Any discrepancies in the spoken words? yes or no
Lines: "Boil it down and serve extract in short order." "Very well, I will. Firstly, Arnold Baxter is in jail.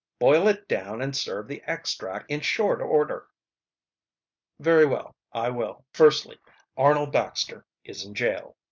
yes